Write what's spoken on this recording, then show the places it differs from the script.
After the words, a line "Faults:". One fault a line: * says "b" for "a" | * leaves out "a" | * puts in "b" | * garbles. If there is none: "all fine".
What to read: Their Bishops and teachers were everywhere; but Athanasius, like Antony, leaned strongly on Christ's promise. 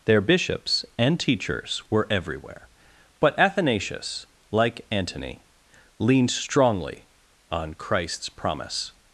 Their Bishops and teachers were everywhere; but Athanasius, like Antony, leaned strongly on Christ's promise.
Faults:
all fine